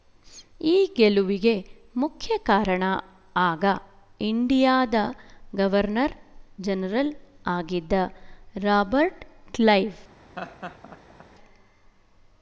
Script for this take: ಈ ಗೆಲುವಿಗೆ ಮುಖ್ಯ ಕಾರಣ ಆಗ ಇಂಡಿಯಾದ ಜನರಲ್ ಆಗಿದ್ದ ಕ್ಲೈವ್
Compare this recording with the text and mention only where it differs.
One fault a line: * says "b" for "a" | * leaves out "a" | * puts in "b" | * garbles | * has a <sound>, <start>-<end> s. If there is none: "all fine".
* puts in "ಗವರ್ನರ್"
* puts in "ರಾಬರ್ಟ್"
* has a laugh, 10.4-11.3 s